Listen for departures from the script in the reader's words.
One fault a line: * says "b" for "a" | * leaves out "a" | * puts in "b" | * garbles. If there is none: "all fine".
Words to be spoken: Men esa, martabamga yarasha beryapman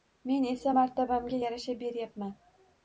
all fine